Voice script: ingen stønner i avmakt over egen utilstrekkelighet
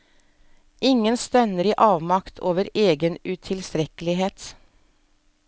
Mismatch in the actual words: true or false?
false